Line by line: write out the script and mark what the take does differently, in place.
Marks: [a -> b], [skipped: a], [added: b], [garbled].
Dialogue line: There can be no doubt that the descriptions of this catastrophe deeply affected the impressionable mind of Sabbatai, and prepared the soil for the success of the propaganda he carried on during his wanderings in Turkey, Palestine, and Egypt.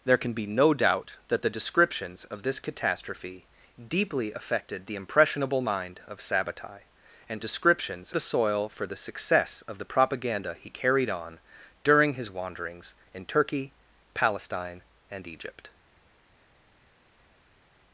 There can be no doubt that the descriptions of this catastrophe deeply affected the impressionable mind of Sabbatai, and [prepared -> descriptions] the soil for the success of the propaganda he carried on during his wanderings in Turkey, Palestine, and Egypt.